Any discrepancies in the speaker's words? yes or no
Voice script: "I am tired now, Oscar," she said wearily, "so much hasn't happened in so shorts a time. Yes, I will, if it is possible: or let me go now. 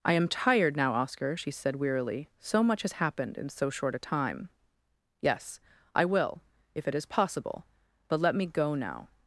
yes